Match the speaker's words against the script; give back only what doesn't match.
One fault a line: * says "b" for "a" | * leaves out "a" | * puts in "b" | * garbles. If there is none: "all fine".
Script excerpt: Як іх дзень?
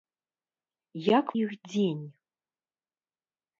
all fine